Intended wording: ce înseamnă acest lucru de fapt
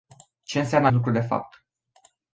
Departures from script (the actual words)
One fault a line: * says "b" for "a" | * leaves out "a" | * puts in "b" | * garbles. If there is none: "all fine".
* leaves out "acest"